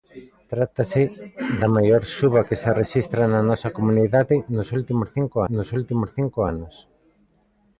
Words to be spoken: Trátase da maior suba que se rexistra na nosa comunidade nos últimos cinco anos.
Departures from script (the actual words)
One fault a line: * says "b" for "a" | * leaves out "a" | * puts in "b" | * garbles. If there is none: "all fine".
* puts in "nos últimos cinco"